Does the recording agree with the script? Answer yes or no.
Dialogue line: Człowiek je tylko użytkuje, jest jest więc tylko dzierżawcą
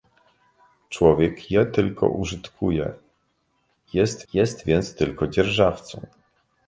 yes